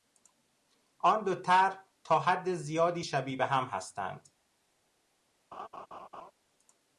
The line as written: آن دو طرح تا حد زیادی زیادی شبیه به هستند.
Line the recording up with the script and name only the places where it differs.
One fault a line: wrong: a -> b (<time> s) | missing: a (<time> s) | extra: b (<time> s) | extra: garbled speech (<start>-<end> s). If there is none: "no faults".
missing: زیادی (3.0 s)
extra: هم (3.5 s)